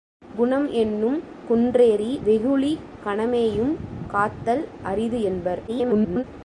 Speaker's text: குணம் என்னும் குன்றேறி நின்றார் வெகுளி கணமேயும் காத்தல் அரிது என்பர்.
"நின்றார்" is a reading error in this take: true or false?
true